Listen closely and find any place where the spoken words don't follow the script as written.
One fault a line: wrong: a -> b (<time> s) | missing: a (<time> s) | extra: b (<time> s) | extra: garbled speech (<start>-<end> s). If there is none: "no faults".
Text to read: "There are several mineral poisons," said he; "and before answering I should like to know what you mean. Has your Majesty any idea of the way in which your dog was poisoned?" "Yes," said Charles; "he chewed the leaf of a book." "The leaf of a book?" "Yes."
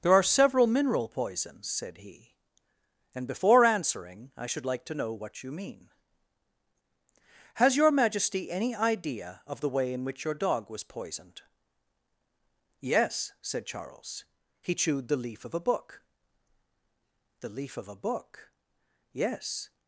no faults